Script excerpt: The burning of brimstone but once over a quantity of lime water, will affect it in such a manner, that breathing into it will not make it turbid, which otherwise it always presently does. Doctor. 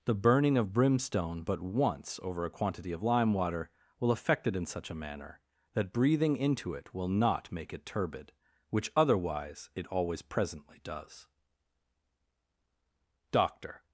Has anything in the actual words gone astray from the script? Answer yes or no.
no